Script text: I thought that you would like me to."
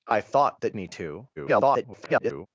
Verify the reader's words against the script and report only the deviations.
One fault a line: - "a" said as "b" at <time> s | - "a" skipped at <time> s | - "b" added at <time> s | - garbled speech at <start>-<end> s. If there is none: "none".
- "you would like" skipped at 0.8 s
- garbled speech at 1.4-2.5 s